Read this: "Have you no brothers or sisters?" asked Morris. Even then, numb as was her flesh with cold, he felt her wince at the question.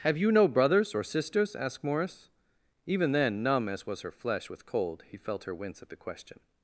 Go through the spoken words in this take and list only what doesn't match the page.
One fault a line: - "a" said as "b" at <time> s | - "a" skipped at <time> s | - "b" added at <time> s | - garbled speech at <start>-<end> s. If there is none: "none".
none